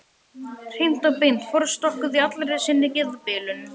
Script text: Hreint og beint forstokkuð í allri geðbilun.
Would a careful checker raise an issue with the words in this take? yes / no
yes